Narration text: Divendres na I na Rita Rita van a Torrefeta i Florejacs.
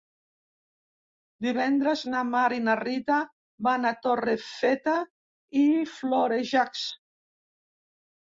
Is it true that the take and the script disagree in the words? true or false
true